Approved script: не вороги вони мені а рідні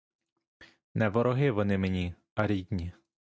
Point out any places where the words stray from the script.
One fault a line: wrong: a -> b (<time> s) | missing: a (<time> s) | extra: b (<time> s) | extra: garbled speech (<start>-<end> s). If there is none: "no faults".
no faults